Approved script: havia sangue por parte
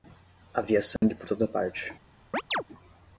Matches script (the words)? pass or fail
fail